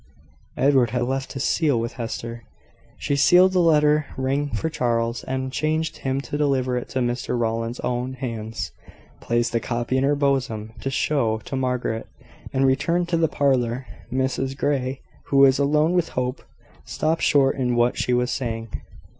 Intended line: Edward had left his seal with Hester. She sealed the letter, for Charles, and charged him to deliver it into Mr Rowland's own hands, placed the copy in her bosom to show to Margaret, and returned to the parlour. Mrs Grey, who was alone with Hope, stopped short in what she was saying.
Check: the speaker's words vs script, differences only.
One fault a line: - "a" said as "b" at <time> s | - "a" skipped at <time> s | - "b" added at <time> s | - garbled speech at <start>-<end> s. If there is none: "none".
- "rang" added at 4.2 s